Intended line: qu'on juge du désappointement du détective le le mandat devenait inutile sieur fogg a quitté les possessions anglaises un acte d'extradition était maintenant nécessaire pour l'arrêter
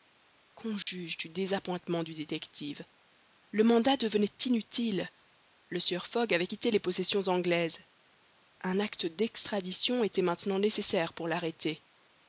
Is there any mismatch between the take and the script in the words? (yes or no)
yes